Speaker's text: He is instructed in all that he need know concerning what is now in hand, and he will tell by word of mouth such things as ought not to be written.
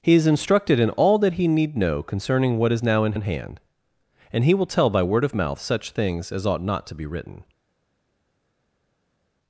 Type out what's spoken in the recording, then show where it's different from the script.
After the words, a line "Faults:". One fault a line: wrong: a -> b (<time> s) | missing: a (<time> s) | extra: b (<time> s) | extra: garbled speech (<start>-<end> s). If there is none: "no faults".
He is instructed in all that he need know concerning what is now in in hand, and he will tell by word of mouth such things as ought not to be written.
Faults:
extra: in (3.1 s)